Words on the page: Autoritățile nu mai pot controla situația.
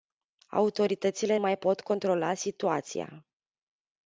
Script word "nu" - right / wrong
wrong